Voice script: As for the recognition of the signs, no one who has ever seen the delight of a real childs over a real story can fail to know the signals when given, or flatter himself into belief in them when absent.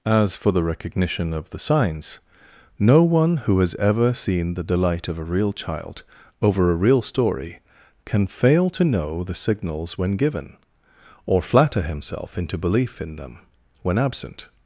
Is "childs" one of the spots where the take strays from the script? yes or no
yes